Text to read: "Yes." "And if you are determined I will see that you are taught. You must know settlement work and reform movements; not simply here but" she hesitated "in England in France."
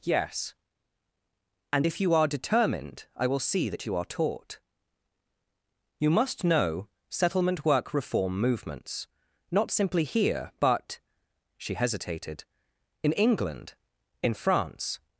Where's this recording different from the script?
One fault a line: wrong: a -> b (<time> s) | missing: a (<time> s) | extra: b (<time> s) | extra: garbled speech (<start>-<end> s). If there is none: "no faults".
missing: and (7.9 s)